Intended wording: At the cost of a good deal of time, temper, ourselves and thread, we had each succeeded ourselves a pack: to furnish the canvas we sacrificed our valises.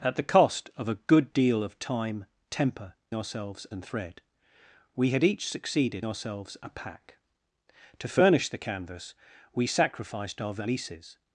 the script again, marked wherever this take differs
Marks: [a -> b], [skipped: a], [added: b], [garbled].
At the cost of a good deal of time, temper, ourselves and thread, we had each succeeded ourselves a pack: to furnish the canvas we sacrificed our valises.